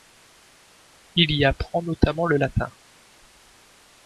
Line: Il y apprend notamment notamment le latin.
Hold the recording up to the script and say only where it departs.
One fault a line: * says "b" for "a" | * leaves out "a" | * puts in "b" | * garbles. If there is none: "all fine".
* leaves out "notamment"